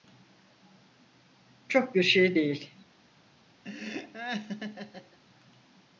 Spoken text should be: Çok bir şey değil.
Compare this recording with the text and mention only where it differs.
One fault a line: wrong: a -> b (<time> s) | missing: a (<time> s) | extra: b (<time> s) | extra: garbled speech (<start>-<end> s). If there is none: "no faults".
no faults